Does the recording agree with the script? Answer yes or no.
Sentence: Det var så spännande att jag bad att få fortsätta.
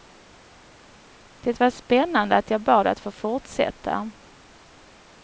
no